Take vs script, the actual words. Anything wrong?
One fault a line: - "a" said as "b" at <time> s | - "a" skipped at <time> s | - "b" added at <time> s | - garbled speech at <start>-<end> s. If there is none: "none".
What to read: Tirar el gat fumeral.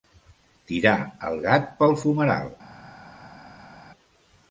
- "pel" added at 1.8 s